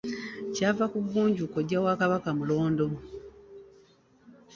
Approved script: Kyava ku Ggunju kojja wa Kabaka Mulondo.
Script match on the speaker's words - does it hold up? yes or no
yes